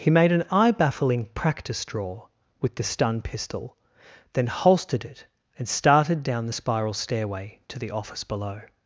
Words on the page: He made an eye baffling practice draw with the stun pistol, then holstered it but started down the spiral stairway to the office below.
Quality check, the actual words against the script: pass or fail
fail